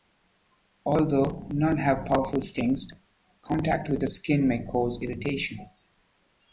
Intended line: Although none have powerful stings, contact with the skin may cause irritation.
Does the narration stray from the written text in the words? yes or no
no